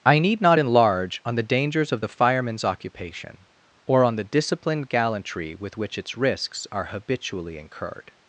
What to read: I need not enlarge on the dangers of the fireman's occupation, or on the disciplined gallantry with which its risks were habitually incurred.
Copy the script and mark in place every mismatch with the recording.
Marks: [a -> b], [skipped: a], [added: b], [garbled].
I need not enlarge on the dangers of the fireman's occupation, or on the disciplined gallantry with which its risks [were -> are] habitually incurred.